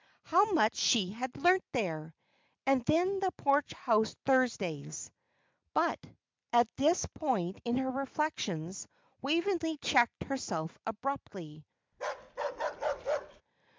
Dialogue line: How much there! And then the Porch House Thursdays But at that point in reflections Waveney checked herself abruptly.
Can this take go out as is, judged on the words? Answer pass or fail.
fail